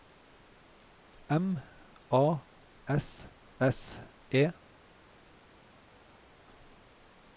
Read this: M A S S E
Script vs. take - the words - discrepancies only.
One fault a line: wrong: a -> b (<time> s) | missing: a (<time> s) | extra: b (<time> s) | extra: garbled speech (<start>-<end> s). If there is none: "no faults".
no faults